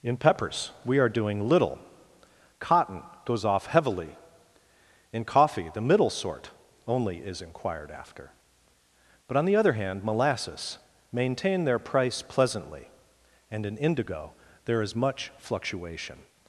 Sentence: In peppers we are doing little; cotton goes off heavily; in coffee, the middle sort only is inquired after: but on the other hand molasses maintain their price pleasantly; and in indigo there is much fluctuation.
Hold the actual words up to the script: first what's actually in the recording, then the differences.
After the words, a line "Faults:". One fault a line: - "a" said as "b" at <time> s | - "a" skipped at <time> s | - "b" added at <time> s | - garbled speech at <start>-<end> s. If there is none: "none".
In peppers we are doing little; cotton goes off heavily; in coffee, the middle sort only is inquired after: but on the other hand molasses maintain their price pleasantly; and in indigo there is much fluctuation.
Faults:
none